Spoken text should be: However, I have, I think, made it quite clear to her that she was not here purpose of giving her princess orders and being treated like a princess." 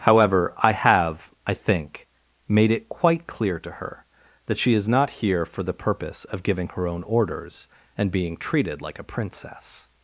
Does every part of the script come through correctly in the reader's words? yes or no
no